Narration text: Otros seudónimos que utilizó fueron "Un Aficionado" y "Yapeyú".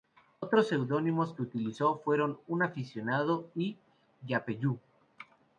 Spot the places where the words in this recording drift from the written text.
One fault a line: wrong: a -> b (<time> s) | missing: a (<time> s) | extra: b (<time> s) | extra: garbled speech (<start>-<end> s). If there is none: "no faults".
no faults